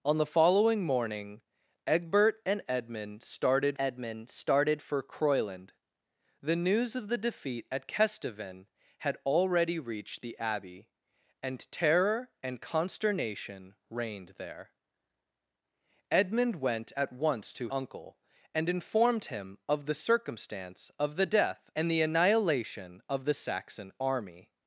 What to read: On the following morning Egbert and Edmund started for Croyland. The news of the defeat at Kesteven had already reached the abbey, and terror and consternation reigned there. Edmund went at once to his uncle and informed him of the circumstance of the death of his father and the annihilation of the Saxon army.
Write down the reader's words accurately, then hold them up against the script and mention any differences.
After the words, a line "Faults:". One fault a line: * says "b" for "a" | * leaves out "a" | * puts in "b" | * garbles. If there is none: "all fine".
On the following morning Egbert and Edmund started Edmund started for Croyland. The news of the defeat at Kesteven had already reached the abbey, and terror and consternation reigned there. Edmund went at once to uncle and informed him of the circumstance of the death and the annihilation of the Saxon army.
Faults:
* puts in "Edmund started"
* leaves out "his"
* leaves out "of his father"